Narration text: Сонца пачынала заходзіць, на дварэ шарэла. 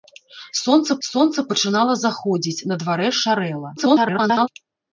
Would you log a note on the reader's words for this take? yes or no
yes